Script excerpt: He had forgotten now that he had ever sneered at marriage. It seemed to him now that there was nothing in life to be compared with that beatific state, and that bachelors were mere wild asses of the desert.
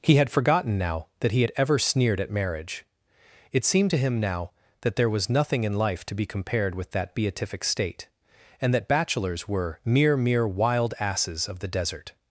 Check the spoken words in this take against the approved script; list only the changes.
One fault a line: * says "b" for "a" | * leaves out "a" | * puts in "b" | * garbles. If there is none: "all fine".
* puts in "mere"